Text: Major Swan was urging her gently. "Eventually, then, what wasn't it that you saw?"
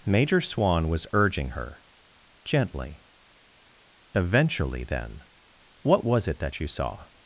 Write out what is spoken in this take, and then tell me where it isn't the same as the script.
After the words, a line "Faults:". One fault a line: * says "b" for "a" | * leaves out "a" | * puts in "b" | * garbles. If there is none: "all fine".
Major Swan was urging her gently. "Eventually, then, what was it that you saw?"
Faults:
* says "was" for "wasn't"